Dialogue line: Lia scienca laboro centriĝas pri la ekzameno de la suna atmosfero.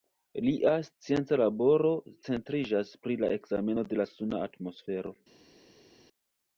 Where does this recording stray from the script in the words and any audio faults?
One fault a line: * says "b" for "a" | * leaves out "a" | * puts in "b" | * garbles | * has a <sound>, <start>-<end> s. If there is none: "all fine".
all fine